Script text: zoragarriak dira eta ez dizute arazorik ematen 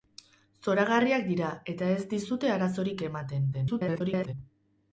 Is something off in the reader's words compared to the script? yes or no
yes